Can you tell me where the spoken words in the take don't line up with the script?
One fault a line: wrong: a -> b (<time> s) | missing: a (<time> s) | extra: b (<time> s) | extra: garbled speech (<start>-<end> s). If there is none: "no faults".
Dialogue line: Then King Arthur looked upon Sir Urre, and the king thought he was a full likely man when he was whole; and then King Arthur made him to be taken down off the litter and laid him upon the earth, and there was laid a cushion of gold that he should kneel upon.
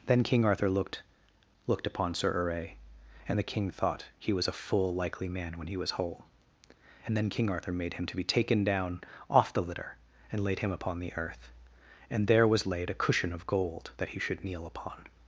extra: looked (1.7 s)